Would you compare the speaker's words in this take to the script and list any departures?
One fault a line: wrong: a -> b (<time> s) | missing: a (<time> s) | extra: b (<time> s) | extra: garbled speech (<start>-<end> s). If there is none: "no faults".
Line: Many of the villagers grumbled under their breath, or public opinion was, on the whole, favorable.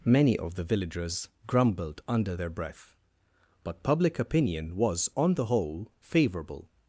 wrong: or -> but (3.6 s)